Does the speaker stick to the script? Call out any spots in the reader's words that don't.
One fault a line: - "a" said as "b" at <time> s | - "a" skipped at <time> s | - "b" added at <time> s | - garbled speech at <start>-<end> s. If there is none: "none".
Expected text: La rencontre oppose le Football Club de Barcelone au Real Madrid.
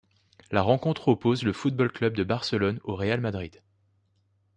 none